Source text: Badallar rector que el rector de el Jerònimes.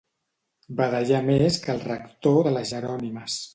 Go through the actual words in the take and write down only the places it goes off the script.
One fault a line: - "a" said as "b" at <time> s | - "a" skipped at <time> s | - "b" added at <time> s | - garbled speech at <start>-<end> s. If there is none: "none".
- "rector" said as "més" at 1.3 s
- "el" said as "les" at 2.6 s